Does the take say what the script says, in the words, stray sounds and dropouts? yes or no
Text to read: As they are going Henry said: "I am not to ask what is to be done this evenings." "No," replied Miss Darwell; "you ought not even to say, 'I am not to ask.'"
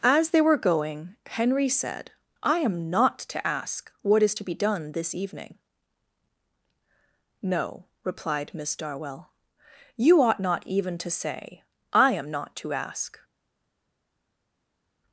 no